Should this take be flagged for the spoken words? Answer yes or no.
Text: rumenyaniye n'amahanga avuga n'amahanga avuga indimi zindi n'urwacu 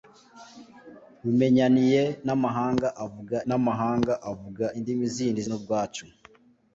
no